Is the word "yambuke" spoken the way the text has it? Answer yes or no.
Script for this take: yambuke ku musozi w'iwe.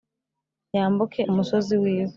yes